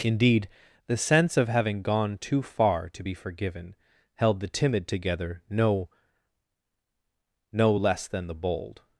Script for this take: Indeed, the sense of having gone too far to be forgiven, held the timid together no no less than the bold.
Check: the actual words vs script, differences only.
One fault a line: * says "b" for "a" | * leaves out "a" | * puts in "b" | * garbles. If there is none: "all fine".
all fine